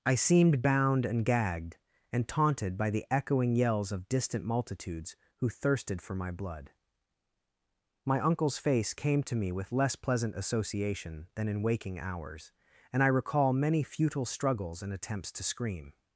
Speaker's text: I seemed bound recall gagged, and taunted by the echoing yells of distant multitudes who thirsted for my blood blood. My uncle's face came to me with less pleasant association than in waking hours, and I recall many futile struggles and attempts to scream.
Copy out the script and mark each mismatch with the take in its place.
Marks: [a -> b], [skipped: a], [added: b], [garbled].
I seemed bound [recall -> and] gagged, and taunted by the echoing yells of distant multitudes who thirsted for my blood [skipped: blood.] My uncle's face came to me with less pleasant association than in waking hours, and I recall many futile struggles and attempts to scream.